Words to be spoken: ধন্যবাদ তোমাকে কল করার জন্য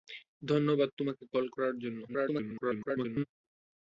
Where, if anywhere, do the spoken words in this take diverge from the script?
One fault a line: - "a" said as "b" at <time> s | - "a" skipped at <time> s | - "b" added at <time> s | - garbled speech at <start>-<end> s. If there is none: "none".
- garbled speech at 2.1-3.2 s